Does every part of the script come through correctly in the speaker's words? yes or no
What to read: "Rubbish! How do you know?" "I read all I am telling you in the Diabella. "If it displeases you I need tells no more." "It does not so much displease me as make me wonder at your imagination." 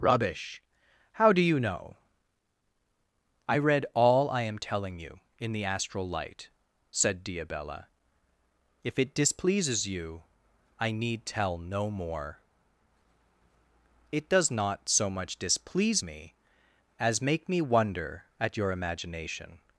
no